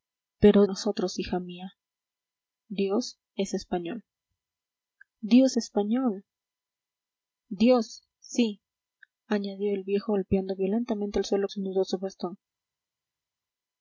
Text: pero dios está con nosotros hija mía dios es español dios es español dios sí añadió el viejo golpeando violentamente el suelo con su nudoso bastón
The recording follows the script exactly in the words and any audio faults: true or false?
false